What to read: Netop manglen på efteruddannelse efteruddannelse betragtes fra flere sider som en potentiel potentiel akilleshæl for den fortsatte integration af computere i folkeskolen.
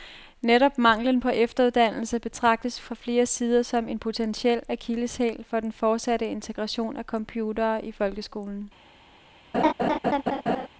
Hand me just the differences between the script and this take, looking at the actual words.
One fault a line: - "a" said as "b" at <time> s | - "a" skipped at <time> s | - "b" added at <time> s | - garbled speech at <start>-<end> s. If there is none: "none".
- "efteruddannelse" skipped at 2.2 s
- "potentiel" skipped at 4.6 s